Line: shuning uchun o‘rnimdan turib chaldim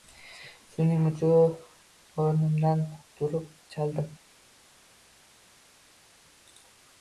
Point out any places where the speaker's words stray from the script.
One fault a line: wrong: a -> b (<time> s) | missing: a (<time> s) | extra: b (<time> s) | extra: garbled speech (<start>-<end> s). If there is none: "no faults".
no faults